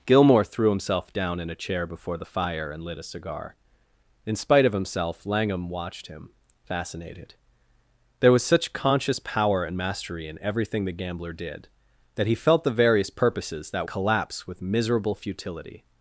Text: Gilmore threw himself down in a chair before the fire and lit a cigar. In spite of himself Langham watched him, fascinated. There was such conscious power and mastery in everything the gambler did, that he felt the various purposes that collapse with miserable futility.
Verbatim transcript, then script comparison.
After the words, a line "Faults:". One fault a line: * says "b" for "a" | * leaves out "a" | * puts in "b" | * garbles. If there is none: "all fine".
Gilmore threw himself down in a chair before the fire and lit a cigar. In spite of himself Langham watched him, fascinated. There was such conscious power and mastery in everything the gambler did, that he felt the various purposes that collapse with miserable futility.
Faults:
all fine